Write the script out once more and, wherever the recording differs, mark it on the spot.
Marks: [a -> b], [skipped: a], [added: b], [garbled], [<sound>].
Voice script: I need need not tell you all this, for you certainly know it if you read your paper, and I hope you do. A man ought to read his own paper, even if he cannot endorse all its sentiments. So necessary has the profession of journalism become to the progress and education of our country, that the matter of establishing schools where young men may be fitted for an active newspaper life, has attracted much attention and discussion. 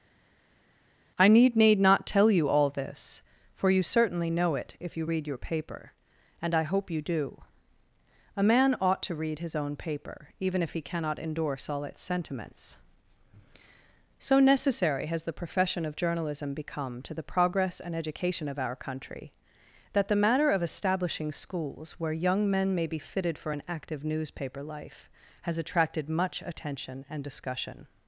I need need not tell you all this, for you certainly know it if you read your paper, and I hope you do. A man ought to read his own paper, even if he cannot endorse all its sentiments. So necessary has the profession of journalism become to the progress and education of our country, that the matter of establishing schools where young men may be fitted for an active newspaper life, has attracted much attention and discussion.